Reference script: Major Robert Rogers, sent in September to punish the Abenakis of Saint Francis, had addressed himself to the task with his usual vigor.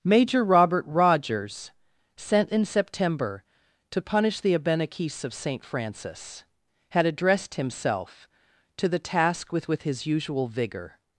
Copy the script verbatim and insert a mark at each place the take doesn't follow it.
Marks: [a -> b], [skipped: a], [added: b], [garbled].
Major Robert Rogers, sent in September to punish the Abenakis of Saint Francis, had addressed himself to the task with [added: with] his usual vigor.